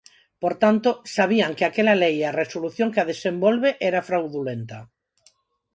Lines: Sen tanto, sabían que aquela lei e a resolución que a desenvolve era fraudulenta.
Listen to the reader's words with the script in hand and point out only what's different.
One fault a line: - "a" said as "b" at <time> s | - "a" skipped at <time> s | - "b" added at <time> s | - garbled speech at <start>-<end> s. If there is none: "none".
- "Sen" said as "Por" at 0.4 s